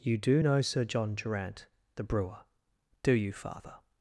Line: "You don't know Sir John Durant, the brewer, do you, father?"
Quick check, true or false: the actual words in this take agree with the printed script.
false